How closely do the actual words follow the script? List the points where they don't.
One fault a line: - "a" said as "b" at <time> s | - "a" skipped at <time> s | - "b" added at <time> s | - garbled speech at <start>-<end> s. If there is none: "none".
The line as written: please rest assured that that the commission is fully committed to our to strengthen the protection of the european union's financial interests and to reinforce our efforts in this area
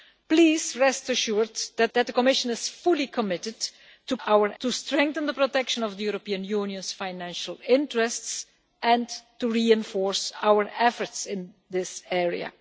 none